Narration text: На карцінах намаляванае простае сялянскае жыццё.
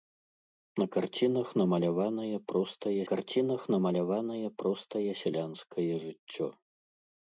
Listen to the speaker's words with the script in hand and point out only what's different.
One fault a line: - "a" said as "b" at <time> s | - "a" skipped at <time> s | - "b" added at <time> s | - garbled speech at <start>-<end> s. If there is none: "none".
- "карцінах намаляванае простае" added at 3.1 s